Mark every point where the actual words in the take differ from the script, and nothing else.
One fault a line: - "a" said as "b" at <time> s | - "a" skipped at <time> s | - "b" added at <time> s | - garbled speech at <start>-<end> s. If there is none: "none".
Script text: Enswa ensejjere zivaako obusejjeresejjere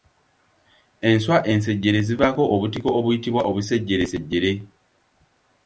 - "obutiko obuyitibwa" added at 2.5 s